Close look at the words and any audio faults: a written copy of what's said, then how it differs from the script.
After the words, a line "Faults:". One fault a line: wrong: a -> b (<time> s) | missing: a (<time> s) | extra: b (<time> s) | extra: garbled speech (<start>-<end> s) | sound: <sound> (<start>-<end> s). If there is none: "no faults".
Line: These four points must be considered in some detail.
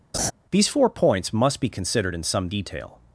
These four points must be considered in some detail.
Faults:
sound: laugh (0.1-0.3 s)